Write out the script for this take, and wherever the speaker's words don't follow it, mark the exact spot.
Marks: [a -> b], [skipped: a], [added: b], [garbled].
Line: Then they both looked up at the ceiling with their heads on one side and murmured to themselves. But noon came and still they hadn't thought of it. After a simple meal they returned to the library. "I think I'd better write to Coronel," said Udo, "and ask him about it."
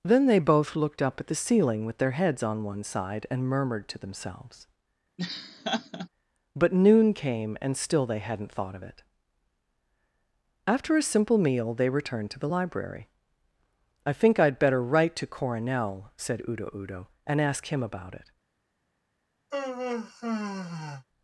Then they both looked up at the ceiling with their heads on one side and murmured to themselves. But noon came and still they hadn't thought of it. After a simple meal they returned to the library. "I think I'd better write to Coronel," said Udo, [added: Udo] "and ask him about it."